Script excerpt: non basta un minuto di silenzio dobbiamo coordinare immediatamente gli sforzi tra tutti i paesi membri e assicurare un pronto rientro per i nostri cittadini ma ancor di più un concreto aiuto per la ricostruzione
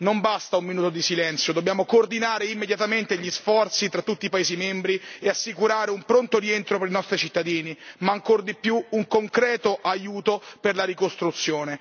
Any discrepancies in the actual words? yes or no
no